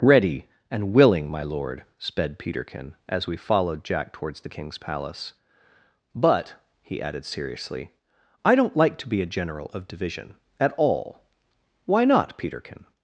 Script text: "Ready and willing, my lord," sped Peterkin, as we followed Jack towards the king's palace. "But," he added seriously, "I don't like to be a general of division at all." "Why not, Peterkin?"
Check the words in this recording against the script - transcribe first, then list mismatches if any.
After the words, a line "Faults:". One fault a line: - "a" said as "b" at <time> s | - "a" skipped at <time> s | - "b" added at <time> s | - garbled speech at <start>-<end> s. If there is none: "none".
"Ready and willing, my lord," sped Peterkin, as we followed Jack towards the king's palace. "But," he added seriously, "I don't like to be a general of division at all." "Why not, Peterkin?"
Faults:
none